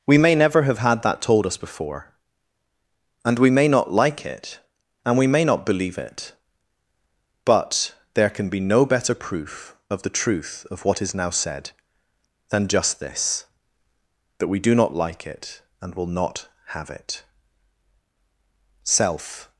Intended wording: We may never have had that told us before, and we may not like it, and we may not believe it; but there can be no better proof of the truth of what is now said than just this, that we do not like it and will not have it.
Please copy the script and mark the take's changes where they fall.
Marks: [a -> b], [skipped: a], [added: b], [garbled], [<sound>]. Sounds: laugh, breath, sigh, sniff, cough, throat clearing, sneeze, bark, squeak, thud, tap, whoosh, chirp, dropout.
We may never have had that told us before, and we may not like it, and we may not believe it; but there can be no better proof of the truth of what is now said than just this, that we do not like it and will not have it. [added: Self]